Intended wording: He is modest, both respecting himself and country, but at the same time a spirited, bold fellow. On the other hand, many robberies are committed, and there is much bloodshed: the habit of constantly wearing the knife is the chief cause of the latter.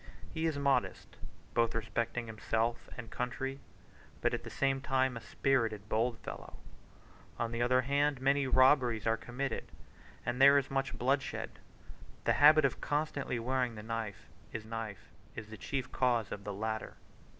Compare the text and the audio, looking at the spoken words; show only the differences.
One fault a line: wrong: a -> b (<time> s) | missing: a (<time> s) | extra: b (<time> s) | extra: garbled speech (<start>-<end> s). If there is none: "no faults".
extra: knife is (14.6 s)